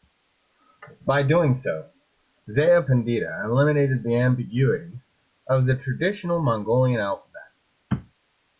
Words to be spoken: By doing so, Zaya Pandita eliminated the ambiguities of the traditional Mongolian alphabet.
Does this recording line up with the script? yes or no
yes